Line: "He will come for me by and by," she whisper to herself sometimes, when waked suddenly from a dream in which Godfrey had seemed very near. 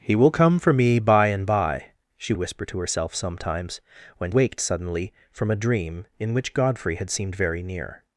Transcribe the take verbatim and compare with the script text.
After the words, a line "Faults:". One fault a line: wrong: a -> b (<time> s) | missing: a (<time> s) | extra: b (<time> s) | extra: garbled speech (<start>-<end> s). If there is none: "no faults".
"He will come for me by and by," she whisper to herself sometimes, when waked suddenly from a dream in which Godfrey had seemed very near.
Faults:
no faults